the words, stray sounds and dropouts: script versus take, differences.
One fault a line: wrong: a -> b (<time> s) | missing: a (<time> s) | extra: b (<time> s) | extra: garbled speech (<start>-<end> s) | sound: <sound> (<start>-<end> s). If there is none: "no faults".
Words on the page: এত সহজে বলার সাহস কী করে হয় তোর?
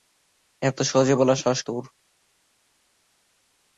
missing: কী করে হয় (1.6 s)